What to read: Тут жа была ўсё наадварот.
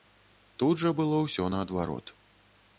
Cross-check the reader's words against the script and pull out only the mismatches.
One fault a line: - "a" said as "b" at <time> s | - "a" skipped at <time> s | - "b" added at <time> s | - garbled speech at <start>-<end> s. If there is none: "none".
- "была" said as "было" at 1.0 s